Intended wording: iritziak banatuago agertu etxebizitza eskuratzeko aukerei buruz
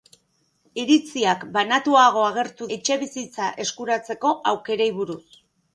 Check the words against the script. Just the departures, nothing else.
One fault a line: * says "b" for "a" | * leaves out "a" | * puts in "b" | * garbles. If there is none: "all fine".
all fine